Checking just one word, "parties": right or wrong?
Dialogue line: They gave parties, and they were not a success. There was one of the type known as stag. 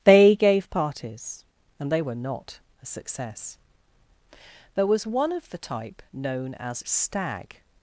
right